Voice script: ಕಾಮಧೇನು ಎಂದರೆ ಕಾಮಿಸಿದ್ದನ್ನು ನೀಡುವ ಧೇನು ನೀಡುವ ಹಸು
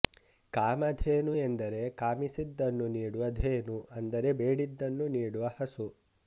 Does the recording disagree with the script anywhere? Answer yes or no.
yes